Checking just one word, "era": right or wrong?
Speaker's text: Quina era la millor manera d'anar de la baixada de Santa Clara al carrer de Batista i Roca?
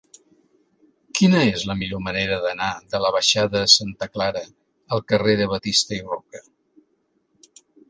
wrong